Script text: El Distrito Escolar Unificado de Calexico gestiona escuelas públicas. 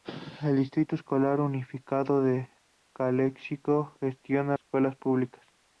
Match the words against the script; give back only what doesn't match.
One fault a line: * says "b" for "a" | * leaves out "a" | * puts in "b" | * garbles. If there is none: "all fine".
all fine